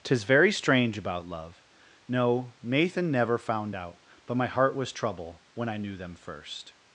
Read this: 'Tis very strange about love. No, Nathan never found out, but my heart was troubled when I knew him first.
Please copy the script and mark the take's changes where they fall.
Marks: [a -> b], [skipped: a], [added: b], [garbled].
'Tis very strange about love. No, Nathan never found out, but my heart was [troubled -> trouble] when I knew [him -> them] first.